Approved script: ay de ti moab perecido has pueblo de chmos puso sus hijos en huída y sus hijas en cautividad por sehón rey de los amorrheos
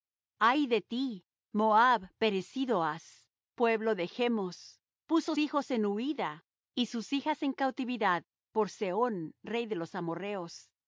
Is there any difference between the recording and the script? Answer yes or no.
yes